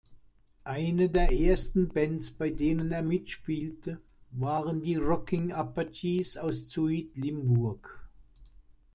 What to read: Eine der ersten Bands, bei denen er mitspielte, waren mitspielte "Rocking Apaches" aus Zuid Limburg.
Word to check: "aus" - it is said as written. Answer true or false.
true